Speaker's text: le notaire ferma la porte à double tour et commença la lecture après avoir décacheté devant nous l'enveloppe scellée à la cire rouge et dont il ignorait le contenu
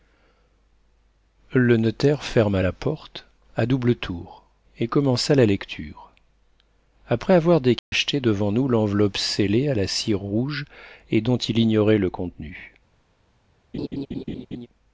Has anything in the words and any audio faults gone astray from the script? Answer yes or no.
yes